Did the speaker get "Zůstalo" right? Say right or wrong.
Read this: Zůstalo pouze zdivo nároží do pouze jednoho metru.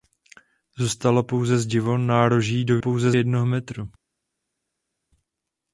right